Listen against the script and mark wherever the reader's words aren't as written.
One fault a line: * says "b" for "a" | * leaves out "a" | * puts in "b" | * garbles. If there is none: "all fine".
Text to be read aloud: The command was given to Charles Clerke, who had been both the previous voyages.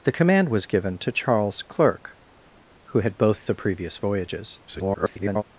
* leaves out "been"
* garbles